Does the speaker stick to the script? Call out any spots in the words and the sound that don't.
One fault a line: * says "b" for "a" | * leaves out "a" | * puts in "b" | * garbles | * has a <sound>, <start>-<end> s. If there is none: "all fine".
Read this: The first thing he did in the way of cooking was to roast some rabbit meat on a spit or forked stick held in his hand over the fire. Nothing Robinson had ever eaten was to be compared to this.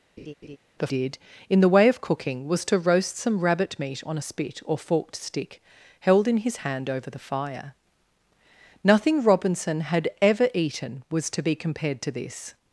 * has a laugh, 0.2-0.6 s
* leaves out "first thing he"